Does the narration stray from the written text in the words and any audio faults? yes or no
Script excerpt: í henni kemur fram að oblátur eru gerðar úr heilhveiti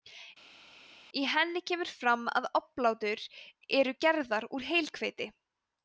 no